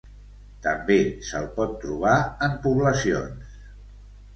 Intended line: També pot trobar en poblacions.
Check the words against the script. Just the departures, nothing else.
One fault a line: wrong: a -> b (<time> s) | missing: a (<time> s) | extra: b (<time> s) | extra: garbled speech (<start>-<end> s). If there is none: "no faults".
extra: se'l (1.3 s)